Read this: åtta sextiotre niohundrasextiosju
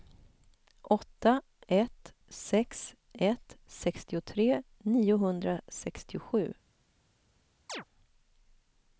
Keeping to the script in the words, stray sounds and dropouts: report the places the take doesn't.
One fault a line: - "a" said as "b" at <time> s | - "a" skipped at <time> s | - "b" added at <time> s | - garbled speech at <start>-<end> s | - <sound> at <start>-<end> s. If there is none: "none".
- "ett sex ett" added at 1.7 s
- chirp at 7.7-7.8 s